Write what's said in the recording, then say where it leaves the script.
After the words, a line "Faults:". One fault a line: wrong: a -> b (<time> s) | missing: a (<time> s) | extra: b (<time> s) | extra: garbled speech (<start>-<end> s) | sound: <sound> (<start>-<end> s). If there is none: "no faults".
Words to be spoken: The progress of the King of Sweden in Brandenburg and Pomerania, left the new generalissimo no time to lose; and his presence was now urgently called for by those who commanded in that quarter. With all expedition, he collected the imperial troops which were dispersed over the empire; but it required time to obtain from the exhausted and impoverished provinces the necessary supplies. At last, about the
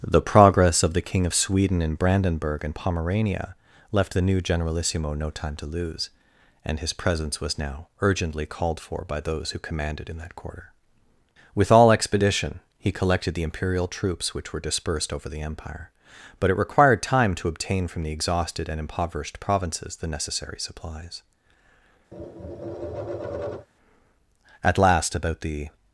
The progress of the King of Sweden in Brandenburg and Pomerania, left the new generalissimo no time to lose; and his presence was now urgently called for by those who commanded in that quarter. With all expedition, he collected the imperial troops which were dispersed over the empire; but it required time to obtain from the exhausted and impoverished provinces the necessary supplies. At last, about the
Faults:
sound: tap (22.1-23.7 s)